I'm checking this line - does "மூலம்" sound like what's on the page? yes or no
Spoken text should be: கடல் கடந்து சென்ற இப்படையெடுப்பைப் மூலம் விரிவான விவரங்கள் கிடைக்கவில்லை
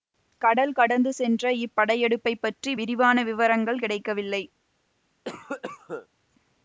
no